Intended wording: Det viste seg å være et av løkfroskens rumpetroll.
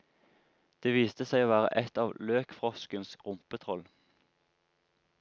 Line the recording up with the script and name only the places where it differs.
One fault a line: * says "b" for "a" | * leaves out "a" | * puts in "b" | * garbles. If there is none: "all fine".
all fine